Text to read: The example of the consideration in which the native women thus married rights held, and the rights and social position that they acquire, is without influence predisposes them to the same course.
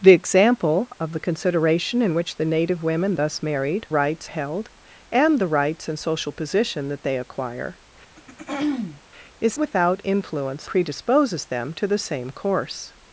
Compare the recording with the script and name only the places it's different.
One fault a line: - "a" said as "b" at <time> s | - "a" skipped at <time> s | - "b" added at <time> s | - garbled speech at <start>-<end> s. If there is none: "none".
none